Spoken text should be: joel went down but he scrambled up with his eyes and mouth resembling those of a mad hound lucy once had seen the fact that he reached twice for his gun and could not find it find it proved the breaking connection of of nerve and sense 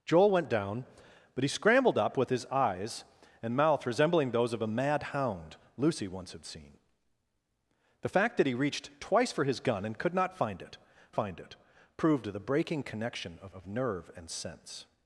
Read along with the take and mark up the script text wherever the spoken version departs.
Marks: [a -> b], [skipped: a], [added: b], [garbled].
joel went down but he scrambled up with his eyes and mouth resembling those of a mad hound lucy once had seen the fact that he reached twice for his gun and could not find it find it proved the breaking connection of of nerve and sense